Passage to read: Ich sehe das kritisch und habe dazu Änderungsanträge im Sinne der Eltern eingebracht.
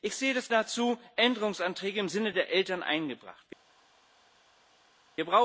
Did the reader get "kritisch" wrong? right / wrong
wrong